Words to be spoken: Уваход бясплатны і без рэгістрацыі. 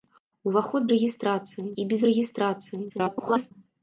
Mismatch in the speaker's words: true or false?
true